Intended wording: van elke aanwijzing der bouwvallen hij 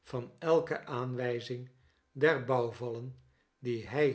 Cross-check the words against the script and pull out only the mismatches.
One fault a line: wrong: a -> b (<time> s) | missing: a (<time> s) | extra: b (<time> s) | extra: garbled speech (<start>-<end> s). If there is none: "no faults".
extra: die (3.6 s)